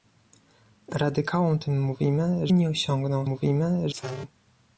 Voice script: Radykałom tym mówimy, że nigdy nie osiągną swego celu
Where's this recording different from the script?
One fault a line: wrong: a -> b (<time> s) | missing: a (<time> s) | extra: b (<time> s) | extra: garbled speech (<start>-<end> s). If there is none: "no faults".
missing: że nigdy (2.5 s)
wrong: swego -> mówimy (3.2 s)